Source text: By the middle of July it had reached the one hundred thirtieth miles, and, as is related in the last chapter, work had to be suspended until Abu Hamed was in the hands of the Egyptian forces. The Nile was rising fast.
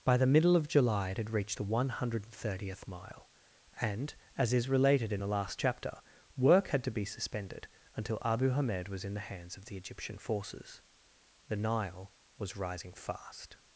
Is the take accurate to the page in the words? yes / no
no